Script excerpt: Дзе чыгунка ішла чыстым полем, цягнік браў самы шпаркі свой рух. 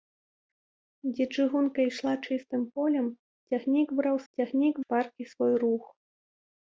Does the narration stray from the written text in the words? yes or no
yes